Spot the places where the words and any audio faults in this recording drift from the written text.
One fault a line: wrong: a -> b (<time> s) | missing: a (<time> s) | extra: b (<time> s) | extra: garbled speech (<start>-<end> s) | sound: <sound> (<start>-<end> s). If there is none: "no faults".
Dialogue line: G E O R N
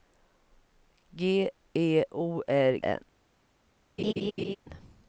sound: laugh (4.0-4.6 s)